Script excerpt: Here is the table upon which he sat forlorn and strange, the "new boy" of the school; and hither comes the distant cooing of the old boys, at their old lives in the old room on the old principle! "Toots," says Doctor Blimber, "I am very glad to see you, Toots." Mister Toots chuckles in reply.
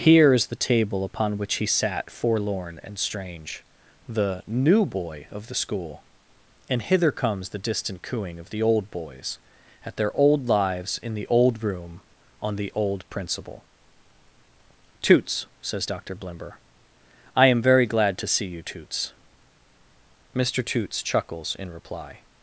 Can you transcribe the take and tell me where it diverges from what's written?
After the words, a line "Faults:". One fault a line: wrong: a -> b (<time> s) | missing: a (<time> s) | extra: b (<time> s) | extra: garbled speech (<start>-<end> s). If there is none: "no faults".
Here is the table upon which he sat forlorn and strange, the "new boy" of the school; and hither comes the distant cooing of the old boys, at their old lives in the old room on the old principle! "Toots," says Doctor Blimber, "I am very glad to see you, Toots." Mister Toots chuckles in reply.
Faults:
no faults